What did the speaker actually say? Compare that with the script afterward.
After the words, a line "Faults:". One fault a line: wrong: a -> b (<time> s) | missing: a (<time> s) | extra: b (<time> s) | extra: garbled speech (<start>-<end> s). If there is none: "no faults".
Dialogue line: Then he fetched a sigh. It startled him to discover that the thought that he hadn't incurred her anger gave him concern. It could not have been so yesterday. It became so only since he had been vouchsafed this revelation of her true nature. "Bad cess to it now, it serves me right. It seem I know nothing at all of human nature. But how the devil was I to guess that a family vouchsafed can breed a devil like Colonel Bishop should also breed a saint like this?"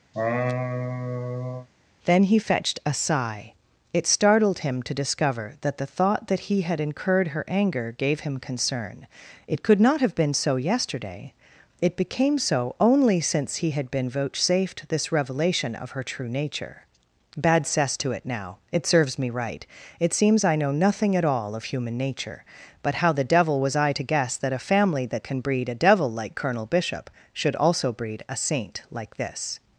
Then he fetched a sigh. It startled him to discover that the thought that he had incurred her anger gave him concern. It could not have been so yesterday. It became so only since he had been vouchsafed this revelation of her true nature. "Bad cess to it now, it serves me right. It seems I know nothing at all of human nature. But how the devil was I to guess that a family that can breed a devil like Colonel Bishop should also breed a saint like this?"
Faults:
wrong: hadn't -> had (6.6 s)
wrong: seem -> seems (20.1 s)
wrong: vouchsafed -> that (25.1 s)